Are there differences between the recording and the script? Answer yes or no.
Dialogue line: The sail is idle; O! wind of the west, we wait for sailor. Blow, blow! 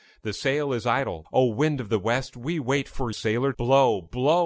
no